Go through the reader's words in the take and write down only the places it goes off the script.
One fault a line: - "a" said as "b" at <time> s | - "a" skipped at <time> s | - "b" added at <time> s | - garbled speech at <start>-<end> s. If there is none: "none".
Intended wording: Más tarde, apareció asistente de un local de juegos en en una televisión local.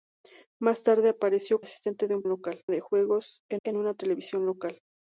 none